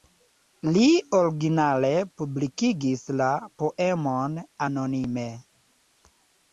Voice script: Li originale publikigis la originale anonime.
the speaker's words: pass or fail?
fail